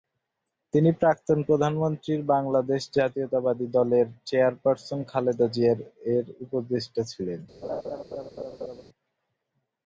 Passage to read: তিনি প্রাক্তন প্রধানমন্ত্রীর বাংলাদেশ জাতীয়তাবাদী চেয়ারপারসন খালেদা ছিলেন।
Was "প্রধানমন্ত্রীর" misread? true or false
false